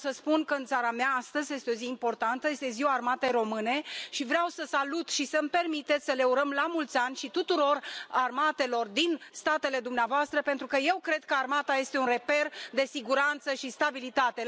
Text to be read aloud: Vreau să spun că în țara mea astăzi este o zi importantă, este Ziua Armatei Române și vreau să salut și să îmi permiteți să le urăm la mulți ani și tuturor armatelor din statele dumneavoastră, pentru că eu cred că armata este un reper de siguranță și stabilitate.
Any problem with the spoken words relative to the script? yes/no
no